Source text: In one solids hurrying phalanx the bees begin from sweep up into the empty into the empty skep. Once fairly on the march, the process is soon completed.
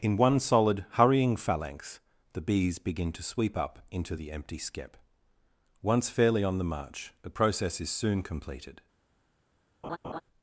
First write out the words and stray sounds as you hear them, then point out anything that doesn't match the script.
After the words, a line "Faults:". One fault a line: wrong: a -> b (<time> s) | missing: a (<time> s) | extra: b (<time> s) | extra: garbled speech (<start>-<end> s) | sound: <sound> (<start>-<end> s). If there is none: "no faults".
In one solid hurrying phalanx the bees begin to sweep up into the empty skep. Once fairly on the march, the process is soon completed.
Faults:
wrong: solids -> solid (0.4 s)
wrong: from -> to (3.1 s)
missing: into the empty (4.6 s)
sound: laugh (9.8-10.2 s)